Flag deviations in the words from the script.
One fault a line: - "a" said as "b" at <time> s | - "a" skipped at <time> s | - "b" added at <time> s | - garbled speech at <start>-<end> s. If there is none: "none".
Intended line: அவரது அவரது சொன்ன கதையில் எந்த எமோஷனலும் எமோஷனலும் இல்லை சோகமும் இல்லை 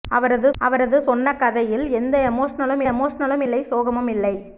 none